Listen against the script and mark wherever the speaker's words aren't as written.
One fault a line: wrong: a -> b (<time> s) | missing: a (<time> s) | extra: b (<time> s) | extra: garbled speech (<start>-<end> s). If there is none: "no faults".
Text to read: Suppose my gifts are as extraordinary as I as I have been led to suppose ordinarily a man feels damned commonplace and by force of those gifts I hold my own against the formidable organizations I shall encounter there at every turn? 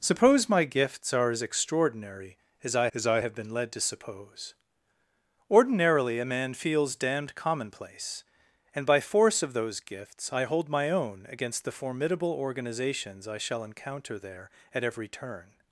no faults